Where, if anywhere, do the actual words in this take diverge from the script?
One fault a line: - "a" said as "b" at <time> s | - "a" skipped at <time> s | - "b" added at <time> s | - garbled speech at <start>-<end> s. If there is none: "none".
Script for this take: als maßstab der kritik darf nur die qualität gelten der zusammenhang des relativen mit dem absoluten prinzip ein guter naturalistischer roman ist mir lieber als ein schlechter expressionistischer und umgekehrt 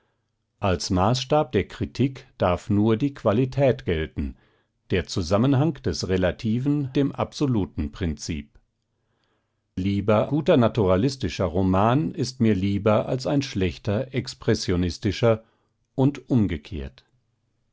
- "mit" skipped at 6.9 s
- "ein" said as "lieber" at 9.8 s